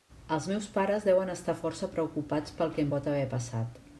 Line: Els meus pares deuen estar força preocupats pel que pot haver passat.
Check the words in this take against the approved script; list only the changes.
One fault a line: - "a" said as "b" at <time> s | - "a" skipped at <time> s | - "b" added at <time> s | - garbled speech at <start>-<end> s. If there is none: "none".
none